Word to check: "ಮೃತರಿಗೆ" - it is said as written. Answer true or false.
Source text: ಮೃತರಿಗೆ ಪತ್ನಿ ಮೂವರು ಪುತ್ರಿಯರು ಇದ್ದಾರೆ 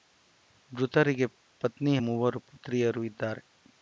true